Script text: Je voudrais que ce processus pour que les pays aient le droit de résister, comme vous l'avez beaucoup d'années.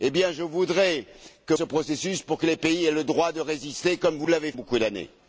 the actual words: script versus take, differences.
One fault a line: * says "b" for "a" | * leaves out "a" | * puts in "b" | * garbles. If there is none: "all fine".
all fine